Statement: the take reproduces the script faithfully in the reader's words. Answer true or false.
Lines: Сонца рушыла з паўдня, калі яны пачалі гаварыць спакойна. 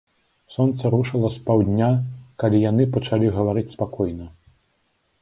true